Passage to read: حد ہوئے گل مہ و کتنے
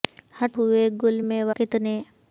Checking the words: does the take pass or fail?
pass